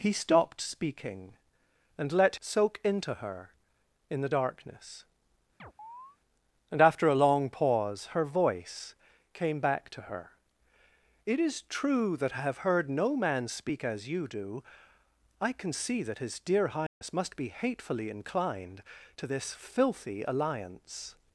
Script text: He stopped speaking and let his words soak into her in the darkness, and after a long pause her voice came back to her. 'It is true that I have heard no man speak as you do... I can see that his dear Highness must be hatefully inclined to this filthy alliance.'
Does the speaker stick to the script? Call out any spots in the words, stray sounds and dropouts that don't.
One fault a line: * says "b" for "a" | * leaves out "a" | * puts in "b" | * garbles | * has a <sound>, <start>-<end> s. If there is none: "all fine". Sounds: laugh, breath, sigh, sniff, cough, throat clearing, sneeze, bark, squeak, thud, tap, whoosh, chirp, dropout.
* leaves out "his words"
* has a chirp, 5.6-6.2 s
* has a dropout, 16.9-17.0 s